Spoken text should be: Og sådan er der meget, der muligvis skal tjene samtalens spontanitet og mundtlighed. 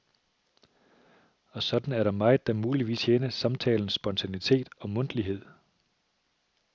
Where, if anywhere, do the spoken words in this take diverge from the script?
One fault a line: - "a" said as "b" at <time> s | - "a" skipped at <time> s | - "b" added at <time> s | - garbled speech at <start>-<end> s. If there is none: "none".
- "skal" skipped at 3.0 s